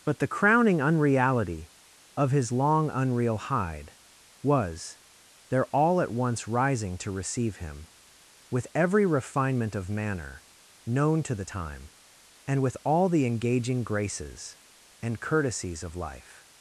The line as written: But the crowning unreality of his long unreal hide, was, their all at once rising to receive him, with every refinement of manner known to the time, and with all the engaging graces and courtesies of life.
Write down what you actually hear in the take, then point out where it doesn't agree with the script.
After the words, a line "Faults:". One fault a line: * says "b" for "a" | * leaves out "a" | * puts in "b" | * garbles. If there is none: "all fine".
But the crowning unreality of his long unreal hide, was, their all at once rising to receive him, with every refinement of manner known to the time, and with all the engaging graces and courtesies of life.
Faults:
all fine